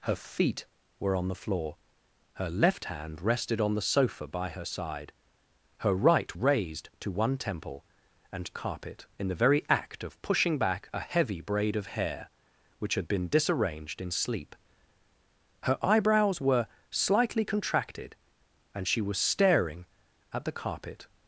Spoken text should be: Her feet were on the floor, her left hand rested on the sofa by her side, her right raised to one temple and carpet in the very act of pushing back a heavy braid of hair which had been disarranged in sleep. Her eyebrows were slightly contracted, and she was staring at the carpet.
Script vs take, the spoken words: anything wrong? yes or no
no